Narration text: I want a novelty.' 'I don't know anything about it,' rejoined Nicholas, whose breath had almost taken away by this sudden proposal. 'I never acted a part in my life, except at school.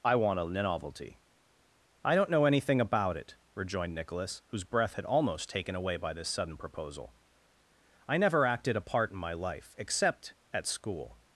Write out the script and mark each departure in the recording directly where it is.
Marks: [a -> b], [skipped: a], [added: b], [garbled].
I want a novelty.' 'I don't know anything about it,' rejoined Nicholas, whose breath had almost taken away by this sudden proposal. 'I never acted a part in my life, except at school.